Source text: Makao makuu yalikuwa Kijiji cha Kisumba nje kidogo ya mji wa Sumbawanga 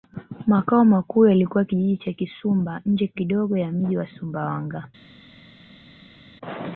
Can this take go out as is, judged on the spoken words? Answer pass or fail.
pass